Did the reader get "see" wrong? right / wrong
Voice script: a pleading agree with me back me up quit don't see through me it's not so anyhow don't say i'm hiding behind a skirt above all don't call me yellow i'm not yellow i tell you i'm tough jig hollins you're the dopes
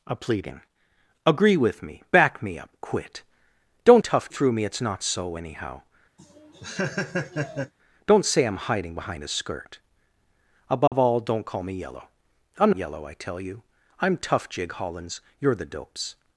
wrong